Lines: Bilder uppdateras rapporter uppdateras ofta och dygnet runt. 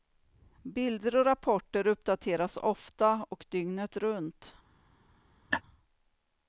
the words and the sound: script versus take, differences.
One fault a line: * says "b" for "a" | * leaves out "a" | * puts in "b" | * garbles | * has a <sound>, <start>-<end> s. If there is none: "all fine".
* says "och" for "uppdateras"
* has a laugh, 5.5-5.6 s